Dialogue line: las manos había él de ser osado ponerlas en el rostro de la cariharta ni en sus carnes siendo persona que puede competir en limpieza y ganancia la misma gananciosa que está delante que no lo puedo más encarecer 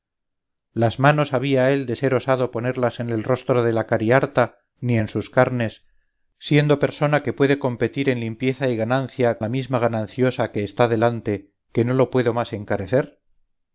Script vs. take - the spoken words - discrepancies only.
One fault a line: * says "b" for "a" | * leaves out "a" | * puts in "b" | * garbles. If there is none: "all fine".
all fine